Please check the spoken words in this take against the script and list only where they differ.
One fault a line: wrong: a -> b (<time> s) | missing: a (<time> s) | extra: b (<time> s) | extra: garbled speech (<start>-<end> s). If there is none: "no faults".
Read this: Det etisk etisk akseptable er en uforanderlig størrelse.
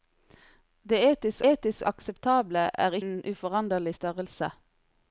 no faults